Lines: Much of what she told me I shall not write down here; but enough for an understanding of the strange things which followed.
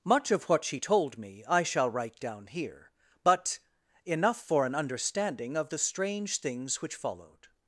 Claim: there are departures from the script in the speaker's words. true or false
true